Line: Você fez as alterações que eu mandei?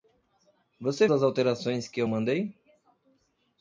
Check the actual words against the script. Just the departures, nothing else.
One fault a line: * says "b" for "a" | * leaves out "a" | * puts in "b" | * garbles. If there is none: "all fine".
* leaves out "fez"